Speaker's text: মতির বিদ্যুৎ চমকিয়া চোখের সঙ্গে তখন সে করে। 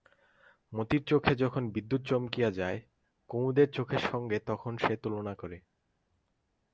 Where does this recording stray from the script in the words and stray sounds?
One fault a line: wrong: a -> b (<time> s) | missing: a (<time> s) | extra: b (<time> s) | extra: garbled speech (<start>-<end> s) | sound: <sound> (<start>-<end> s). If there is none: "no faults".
extra: চোখে যখন (1.0 s)
extra: যায় কুমুদের (2.5 s)
extra: তুলনা (5.0 s)